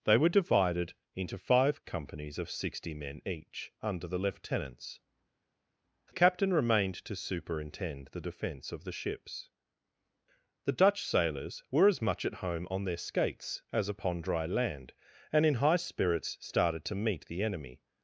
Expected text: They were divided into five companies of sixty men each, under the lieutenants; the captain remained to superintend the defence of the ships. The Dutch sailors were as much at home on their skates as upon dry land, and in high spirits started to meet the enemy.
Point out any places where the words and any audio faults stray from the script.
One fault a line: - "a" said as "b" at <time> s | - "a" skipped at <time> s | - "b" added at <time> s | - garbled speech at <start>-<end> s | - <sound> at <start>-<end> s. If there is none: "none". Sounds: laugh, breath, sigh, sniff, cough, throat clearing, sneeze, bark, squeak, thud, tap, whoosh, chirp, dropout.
- "the" skipped at 5.0 s